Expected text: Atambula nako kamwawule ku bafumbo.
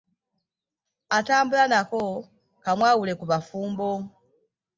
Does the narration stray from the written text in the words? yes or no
no